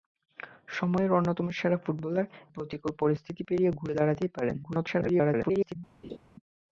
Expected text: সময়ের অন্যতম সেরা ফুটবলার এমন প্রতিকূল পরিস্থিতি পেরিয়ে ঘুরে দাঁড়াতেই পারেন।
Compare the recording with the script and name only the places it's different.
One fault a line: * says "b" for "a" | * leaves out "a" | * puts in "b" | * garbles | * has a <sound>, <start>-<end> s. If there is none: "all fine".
* leaves out "এমন"
* garbles
* has a laugh, 6.0-6.2 s